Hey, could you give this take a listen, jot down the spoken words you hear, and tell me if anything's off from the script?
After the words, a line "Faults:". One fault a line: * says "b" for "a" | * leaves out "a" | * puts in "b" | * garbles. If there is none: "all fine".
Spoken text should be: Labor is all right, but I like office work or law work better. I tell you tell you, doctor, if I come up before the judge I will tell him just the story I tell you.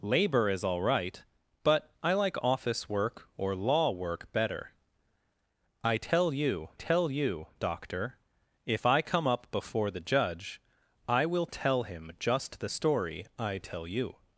Labor is all right, but I like office work or law work better. I tell you tell you, doctor, if I come up before the judge I will tell him just the story I tell you.
Faults:
all fine